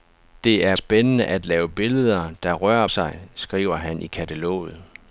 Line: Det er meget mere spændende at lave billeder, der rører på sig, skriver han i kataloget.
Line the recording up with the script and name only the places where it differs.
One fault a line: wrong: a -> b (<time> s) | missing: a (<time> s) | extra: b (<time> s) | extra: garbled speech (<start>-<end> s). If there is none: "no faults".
missing: meget mere (0.8 s)
missing: på (2.9 s)